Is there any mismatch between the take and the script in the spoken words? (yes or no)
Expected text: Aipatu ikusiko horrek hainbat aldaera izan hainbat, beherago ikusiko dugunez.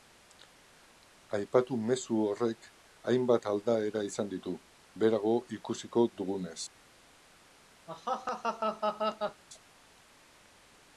yes